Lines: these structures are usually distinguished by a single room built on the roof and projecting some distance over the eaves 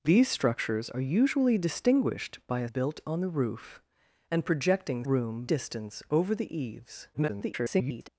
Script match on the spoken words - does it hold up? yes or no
no